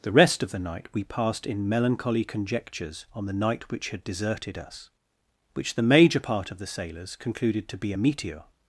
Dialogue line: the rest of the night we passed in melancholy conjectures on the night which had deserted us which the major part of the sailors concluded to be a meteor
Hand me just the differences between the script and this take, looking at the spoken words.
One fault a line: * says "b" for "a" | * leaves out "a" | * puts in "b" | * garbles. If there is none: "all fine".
all fine